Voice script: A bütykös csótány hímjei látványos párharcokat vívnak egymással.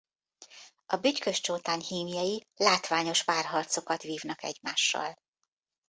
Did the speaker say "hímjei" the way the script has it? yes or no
yes